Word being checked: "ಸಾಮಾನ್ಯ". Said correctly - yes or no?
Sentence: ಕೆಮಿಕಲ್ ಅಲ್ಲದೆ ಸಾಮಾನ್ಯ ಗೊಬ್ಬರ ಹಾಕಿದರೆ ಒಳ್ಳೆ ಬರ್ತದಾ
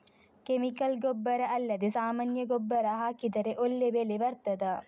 yes